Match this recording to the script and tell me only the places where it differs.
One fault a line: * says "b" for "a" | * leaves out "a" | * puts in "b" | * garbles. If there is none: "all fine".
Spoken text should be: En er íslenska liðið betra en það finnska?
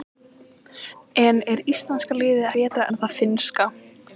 all fine